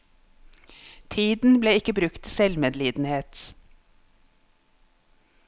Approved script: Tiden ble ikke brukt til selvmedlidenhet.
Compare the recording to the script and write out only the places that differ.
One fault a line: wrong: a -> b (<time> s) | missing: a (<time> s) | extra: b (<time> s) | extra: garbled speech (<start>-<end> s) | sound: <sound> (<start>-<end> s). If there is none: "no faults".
no faults